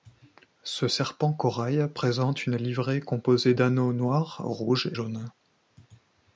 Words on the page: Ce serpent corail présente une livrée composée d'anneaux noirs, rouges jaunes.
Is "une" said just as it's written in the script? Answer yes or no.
yes